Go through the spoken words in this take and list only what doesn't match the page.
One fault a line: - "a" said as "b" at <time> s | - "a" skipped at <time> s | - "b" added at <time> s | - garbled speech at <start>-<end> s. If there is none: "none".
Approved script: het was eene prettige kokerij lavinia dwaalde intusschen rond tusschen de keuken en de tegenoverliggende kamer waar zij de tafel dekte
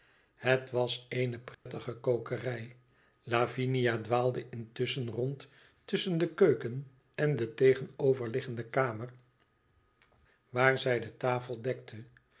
none